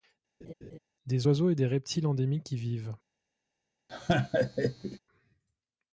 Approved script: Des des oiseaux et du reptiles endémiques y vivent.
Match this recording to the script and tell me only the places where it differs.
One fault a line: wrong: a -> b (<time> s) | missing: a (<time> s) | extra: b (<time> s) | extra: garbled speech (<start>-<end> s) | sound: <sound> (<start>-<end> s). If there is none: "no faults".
sound: laugh (0.4-0.8 s)
missing: des (1.3 s)
wrong: du -> des (1.6 s)
sound: laugh (3.9-5.0 s)